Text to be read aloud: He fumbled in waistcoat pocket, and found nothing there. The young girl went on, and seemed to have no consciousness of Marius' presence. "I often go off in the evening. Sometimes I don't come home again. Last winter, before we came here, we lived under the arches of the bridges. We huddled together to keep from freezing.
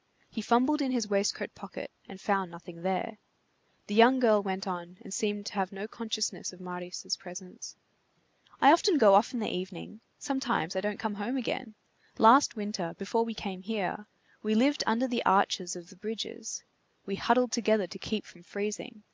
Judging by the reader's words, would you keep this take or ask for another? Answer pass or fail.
fail